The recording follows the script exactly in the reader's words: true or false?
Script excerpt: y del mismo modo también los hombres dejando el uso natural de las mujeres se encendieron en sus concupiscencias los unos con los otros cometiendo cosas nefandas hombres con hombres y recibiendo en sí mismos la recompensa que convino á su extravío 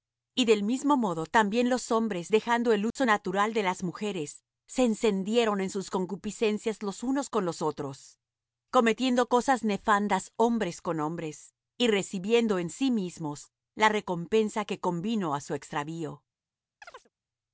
true